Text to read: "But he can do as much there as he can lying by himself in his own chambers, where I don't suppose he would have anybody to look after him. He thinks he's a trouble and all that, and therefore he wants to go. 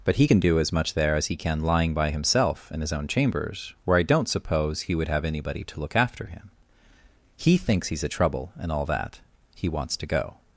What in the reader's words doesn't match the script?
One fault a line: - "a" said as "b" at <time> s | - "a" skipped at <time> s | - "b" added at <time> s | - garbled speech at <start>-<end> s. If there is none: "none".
- "and therefore" skipped at 9.2 s